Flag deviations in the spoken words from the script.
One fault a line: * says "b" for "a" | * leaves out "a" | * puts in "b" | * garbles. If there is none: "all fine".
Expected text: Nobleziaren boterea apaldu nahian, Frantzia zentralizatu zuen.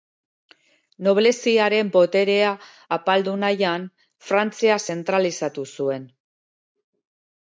all fine